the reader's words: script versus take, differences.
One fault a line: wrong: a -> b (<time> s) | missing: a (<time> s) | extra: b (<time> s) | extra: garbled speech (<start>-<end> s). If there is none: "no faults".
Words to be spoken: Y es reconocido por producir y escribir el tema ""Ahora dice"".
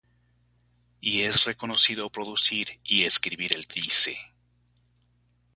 missing: por (2.1 s)
missing: tema Ahora (3.7 s)